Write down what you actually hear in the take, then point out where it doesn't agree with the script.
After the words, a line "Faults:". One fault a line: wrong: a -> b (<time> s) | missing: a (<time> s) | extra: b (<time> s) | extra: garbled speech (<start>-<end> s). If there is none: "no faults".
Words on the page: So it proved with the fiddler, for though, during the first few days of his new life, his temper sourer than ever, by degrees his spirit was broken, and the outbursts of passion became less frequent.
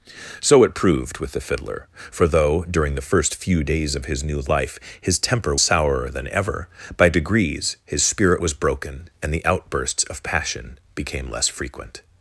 So it proved with the fiddler, for though, during the first few days of his new life, his temper sourer than ever, by degrees his spirit was broken, and the outbursts of passion became less frequent.
Faults:
no faults